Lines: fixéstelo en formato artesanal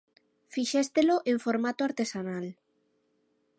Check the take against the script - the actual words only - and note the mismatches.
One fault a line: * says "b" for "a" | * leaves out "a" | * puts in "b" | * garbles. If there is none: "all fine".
all fine